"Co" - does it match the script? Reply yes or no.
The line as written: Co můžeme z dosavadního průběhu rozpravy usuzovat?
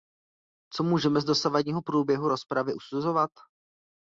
yes